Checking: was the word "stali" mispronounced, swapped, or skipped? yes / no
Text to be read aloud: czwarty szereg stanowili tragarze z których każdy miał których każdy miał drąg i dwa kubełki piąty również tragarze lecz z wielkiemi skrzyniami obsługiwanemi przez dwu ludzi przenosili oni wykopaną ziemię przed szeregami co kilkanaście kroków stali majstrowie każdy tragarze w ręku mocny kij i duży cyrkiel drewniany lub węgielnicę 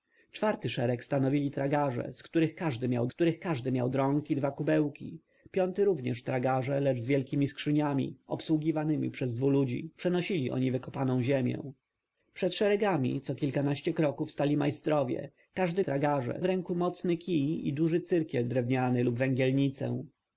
no